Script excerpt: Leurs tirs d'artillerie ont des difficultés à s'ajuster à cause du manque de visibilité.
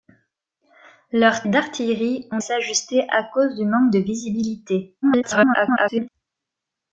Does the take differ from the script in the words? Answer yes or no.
yes